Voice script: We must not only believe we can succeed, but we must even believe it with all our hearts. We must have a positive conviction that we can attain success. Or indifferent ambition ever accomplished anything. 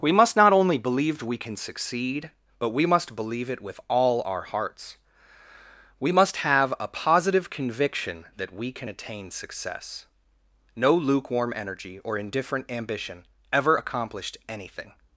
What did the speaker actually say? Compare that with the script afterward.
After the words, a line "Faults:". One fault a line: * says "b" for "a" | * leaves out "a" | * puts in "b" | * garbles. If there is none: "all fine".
We must not only believe we can succeed, but we must believe it with all our hearts. We must have a positive conviction that we can attain success. No lukewarm energy or indifferent ambition ever accomplished anything.
Faults:
* leaves out "even"
* puts in "No lukewarm energy"